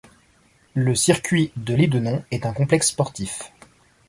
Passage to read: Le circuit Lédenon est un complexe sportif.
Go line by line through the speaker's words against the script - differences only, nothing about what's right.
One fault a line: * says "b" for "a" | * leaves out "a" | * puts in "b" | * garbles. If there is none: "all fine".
* puts in "de"